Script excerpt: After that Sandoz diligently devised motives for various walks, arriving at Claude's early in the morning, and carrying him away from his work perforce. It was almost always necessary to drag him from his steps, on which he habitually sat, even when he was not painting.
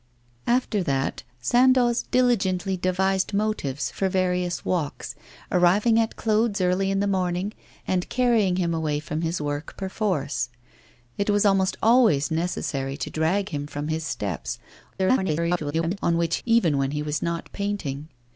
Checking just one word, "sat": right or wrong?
wrong